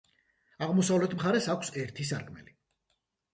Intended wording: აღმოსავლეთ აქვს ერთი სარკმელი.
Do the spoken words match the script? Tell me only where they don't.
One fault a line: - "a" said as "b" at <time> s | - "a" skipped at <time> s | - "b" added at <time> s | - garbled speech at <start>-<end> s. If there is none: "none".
- "მხარეს" added at 1.1 s